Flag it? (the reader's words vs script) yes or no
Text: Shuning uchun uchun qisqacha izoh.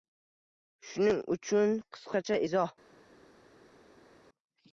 yes